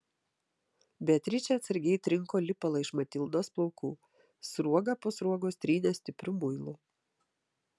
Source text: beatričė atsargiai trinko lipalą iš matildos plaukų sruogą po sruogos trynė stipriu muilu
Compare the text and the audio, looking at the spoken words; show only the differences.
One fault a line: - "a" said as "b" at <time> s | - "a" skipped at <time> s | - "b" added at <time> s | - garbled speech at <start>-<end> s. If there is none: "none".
none